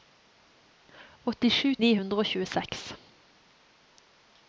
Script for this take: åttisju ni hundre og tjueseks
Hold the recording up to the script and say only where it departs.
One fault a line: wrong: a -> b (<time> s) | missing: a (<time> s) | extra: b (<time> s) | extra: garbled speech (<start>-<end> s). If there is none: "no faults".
no faults